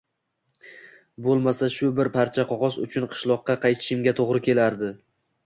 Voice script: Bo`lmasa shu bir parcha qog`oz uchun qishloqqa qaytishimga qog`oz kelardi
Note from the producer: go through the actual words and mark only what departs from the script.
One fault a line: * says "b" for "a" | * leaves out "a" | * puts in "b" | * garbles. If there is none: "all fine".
* says "to`g`ri" for "qog`oz"